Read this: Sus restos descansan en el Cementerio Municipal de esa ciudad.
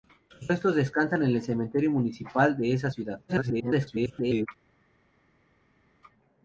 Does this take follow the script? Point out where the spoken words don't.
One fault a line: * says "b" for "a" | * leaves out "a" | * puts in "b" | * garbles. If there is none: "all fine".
* garbles